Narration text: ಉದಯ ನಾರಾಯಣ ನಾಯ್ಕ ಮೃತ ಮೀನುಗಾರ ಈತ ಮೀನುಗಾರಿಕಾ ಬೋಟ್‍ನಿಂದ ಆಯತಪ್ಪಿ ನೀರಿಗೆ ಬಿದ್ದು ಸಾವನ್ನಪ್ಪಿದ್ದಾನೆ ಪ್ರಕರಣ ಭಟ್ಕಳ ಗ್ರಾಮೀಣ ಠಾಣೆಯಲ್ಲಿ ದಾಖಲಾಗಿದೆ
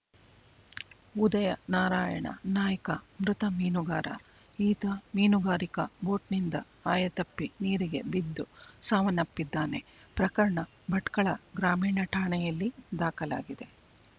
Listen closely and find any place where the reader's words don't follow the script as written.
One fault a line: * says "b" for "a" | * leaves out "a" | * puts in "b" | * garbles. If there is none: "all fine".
all fine